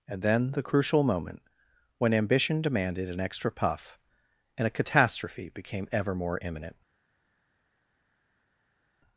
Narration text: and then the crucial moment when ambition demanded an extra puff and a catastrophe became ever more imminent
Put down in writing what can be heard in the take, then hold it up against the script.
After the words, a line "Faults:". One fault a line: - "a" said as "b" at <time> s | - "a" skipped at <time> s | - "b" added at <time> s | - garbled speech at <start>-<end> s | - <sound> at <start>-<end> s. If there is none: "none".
and then the crucial moment when ambition demanded an extra puff and a catastrophe became ever more imminent
Faults:
none